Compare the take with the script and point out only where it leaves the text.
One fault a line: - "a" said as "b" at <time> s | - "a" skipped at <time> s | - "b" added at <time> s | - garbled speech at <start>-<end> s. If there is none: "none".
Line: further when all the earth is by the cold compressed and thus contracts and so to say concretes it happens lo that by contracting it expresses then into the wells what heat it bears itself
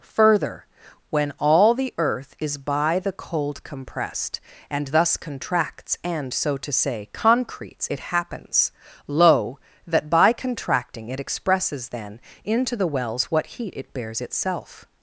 none